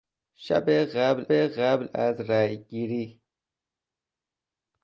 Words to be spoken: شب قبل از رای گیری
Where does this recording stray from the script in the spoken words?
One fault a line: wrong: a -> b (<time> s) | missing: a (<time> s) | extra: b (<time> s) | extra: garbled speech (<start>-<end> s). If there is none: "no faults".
extra: قبل (1.3 s)